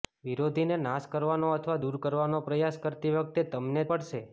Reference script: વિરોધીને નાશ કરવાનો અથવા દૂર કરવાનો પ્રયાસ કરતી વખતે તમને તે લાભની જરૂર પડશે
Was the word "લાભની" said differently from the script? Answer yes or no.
yes